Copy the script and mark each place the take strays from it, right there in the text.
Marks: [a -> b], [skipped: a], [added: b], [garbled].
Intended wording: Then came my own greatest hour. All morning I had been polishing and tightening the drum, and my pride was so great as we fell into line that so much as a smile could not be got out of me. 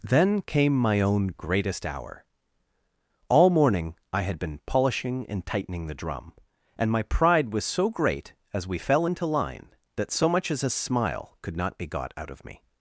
Then came my own greatest hour. All morning I had been polishing and tightening the drum, and my pride was so great as we fell into line that so much as a smile could not be got out of me.